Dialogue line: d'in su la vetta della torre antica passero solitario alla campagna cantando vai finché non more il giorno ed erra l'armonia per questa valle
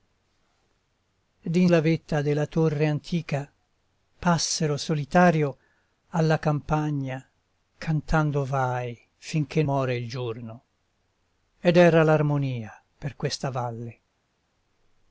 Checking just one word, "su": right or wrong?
wrong